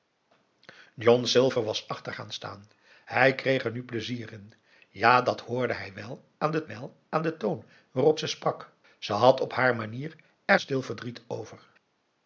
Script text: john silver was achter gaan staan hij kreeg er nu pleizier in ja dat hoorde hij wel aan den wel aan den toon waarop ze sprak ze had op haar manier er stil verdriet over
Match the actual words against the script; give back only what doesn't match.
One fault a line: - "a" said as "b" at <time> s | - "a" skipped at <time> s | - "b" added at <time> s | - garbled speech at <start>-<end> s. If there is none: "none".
none